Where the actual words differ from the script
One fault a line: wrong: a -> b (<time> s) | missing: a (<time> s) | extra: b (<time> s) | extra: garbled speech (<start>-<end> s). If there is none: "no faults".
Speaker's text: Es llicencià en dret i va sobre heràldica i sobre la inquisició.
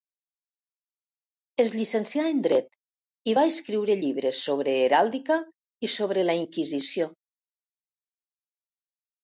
extra: escriure llibres (3.5 s)